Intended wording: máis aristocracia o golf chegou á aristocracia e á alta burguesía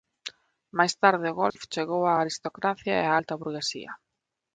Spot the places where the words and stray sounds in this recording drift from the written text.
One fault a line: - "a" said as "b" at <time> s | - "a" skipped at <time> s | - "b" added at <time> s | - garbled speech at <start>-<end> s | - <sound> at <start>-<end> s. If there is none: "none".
- "aristocracia" said as "tarde" at 1.0 s
- dropout at 1.5-1.6 s